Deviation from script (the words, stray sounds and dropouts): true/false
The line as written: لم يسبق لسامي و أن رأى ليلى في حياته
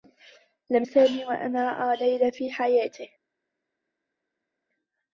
true